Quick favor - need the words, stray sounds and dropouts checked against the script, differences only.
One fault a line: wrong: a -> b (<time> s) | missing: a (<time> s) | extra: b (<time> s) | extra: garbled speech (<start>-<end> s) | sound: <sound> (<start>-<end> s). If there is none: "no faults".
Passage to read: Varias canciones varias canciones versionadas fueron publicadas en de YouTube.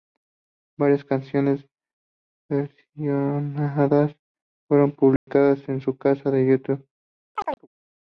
missing: varias canciones (1.7 s)
sound: dropout (5.2-5.3 s)
extra: su canal (5.8 s)
sound: chirp (7.4-7.7 s)